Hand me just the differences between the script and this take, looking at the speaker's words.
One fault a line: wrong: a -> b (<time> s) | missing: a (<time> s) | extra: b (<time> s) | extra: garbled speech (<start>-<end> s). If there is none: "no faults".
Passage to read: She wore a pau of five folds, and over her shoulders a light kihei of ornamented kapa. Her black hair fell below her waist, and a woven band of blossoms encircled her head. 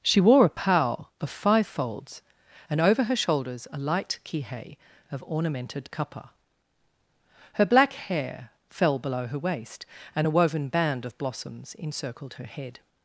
no faults